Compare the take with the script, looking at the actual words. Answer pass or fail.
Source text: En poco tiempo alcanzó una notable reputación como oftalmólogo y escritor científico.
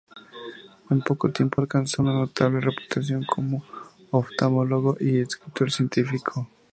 pass